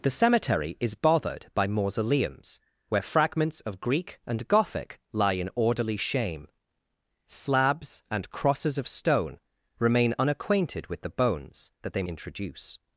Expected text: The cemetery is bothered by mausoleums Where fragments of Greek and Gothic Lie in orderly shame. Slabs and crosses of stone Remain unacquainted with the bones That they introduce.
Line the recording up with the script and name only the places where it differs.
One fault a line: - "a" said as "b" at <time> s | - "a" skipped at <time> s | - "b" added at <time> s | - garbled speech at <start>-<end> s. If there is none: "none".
none